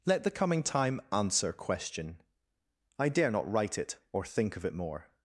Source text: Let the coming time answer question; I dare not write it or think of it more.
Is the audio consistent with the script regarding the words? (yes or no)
yes